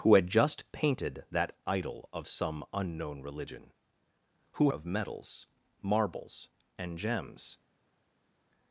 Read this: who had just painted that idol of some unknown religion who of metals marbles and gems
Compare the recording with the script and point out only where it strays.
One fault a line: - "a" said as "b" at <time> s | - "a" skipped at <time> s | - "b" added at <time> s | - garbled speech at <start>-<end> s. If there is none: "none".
none